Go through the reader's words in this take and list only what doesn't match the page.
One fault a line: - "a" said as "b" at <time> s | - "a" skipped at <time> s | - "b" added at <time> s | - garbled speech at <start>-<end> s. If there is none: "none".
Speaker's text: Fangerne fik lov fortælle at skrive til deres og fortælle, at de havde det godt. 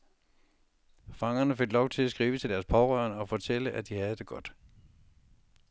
- "fortælle" said as "til" at 1.9 s
- "pårørende" added at 2.6 s